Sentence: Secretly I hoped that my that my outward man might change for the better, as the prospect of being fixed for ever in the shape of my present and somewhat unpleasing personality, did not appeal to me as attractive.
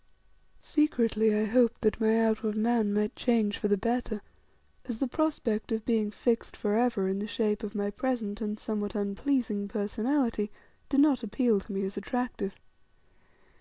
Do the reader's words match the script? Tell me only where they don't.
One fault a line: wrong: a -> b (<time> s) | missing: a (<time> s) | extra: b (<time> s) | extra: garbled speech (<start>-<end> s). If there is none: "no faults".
missing: that my (2.2 s)